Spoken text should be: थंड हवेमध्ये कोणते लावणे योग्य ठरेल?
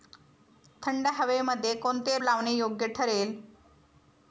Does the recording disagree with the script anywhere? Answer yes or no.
no